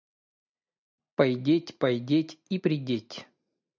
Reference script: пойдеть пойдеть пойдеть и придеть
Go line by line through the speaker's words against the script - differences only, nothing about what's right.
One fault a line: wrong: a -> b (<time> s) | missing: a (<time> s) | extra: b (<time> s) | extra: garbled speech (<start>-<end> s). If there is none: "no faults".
missing: пойдеть (2.4 s)